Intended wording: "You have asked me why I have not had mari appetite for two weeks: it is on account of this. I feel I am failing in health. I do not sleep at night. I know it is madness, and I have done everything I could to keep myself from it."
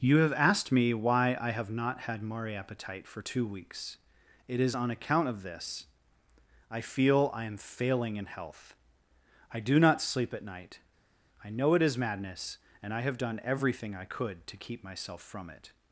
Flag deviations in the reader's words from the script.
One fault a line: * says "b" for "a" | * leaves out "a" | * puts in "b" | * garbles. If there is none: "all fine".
all fine